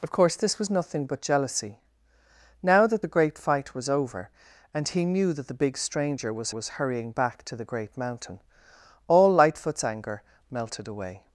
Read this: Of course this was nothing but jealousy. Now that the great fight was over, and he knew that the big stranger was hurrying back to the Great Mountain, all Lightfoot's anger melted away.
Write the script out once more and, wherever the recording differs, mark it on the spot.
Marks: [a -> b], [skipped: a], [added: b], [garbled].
Of course this was nothing but jealousy. Now that the great fight was over, and he knew that the big stranger was [added: was] hurrying back to the Great Mountain, all Lightfoot's anger melted away.